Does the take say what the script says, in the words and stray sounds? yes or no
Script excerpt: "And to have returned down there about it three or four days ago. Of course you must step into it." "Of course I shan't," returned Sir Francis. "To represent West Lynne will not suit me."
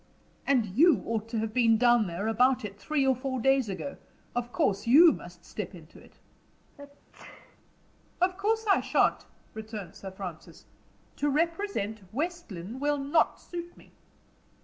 no